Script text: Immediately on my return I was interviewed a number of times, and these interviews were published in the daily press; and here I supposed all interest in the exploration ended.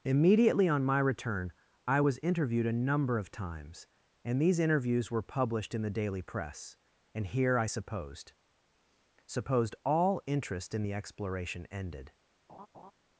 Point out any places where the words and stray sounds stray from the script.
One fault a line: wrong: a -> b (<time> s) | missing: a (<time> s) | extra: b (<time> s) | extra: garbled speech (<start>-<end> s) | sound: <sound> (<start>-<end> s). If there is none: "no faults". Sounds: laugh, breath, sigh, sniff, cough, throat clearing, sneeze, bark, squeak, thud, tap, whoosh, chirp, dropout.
extra: supposed (9.2 s)
sound: laugh (12.5-12.9 s)